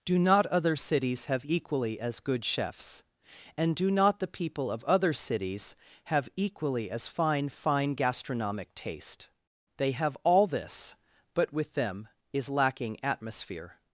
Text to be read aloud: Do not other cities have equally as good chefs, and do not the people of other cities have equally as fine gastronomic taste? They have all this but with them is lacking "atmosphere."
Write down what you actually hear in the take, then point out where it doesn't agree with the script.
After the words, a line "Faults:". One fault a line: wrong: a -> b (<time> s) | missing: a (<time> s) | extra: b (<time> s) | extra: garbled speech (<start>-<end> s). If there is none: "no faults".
Do not other cities have equally as good chefs, and do not the people of other cities have equally as fine fine gastronomic taste? They have all this but with them is lacking "atmosphere."
Faults:
extra: fine (7.5 s)